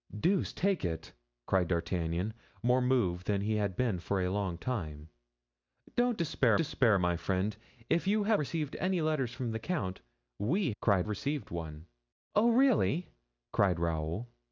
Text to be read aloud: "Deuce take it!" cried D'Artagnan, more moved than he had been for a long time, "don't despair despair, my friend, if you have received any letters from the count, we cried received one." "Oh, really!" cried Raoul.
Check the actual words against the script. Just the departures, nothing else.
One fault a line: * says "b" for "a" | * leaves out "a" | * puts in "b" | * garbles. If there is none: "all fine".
all fine